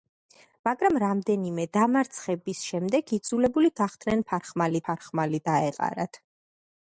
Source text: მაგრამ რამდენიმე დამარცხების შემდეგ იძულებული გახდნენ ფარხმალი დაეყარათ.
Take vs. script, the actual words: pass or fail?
fail